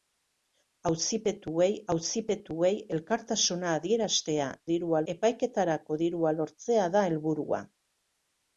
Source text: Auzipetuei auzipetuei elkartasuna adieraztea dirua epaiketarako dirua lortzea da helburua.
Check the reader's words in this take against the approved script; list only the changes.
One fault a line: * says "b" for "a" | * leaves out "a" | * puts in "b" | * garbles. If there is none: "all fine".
all fine